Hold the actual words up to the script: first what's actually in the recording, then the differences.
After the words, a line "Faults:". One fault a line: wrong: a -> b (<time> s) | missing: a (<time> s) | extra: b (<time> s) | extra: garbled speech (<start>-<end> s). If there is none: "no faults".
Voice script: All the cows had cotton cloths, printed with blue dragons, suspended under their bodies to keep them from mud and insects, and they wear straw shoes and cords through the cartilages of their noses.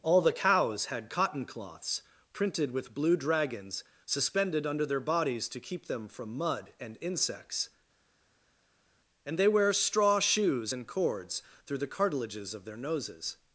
All the cows had cotton cloths, printed with blue dragons, suspended under their bodies to keep them from mud and insects, and they wear straw shoes and cords through the cartilages of their noses.
Faults:
no faults